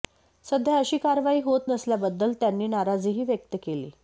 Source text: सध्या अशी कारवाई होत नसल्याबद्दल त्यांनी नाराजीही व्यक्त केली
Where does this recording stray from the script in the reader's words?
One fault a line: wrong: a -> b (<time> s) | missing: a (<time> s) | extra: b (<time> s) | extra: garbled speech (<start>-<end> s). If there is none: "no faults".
no faults